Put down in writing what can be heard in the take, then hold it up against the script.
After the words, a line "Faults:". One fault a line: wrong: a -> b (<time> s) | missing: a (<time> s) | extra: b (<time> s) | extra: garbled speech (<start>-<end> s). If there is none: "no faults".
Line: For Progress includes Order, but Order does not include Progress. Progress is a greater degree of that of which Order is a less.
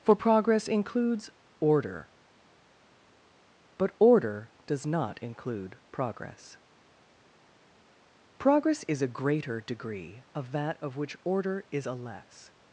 For Progress includes Order, but Order does not include Progress. Progress is a greater degree of that of which Order is a less.
Faults:
no faults